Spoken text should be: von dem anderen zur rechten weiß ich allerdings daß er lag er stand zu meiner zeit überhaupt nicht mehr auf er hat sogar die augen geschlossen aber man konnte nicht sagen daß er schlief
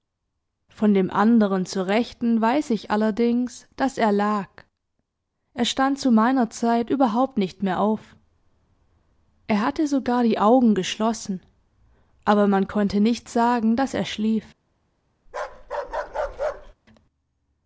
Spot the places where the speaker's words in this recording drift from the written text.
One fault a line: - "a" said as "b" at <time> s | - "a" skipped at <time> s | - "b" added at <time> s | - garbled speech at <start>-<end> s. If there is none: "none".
- "hat" said as "hatte" at 9.6 s